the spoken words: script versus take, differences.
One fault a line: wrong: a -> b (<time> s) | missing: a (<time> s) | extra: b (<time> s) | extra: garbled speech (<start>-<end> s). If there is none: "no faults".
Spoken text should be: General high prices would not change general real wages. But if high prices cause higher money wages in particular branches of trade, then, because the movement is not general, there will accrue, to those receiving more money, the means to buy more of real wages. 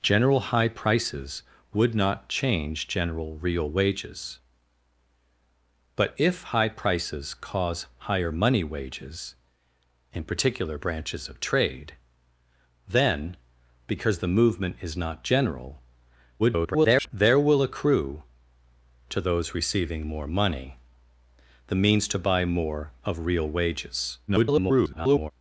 extra: garbled speech (16.4-17.1 s)
extra: garbled speech (24.3-25.3 s)